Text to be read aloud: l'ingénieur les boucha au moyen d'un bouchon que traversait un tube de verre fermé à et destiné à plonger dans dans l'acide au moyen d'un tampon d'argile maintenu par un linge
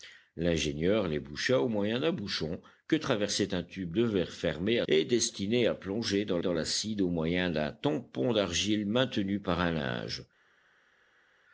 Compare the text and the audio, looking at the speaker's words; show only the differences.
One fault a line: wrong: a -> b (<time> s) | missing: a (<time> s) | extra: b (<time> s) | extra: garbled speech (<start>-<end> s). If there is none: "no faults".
no faults